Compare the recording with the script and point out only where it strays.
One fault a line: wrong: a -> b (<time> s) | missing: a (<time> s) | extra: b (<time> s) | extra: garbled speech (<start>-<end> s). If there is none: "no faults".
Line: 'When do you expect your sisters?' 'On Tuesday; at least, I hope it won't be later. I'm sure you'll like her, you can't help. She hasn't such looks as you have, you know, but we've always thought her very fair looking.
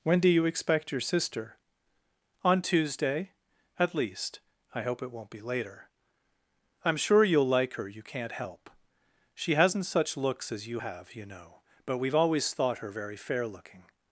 wrong: sisters -> sister (1.0 s)